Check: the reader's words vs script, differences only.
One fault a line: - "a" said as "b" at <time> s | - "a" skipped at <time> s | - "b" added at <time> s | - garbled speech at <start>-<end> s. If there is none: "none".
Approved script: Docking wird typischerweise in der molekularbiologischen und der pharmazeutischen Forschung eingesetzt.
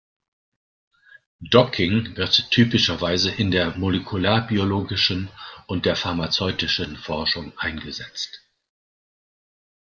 none